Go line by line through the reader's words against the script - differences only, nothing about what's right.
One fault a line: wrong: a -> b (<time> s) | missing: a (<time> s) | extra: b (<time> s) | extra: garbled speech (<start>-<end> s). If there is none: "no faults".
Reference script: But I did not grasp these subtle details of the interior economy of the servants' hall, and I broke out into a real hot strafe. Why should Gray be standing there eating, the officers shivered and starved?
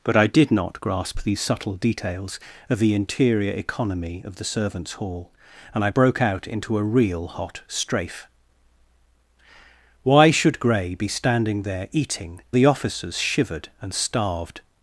no faults